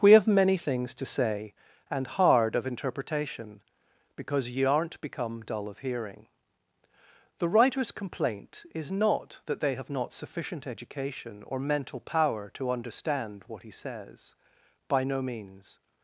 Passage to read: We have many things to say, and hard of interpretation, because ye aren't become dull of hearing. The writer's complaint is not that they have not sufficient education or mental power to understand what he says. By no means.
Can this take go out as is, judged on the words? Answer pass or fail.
pass